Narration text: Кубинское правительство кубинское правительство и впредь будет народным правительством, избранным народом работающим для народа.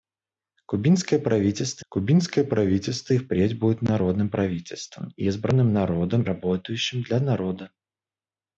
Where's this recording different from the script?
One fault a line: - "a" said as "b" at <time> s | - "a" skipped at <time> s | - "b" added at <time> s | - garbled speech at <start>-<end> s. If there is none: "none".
none